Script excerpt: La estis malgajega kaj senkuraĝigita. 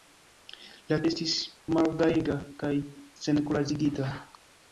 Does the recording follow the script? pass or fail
pass